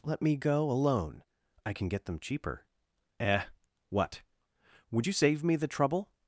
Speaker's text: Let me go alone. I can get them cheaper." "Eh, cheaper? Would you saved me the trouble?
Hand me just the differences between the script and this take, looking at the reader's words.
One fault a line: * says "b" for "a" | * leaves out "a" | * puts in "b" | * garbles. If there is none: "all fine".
* says "what" for "cheaper"
* says "save" for "saved"